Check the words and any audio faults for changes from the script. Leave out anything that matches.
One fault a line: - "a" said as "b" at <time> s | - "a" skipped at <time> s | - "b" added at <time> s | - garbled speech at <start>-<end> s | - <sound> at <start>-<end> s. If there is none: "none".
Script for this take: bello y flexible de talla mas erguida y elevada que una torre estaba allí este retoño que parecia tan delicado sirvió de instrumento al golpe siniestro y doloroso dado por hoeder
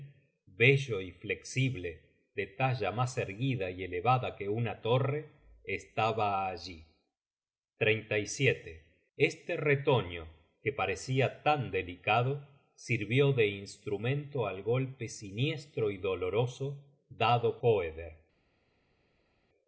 - "por" skipped at 17.6 s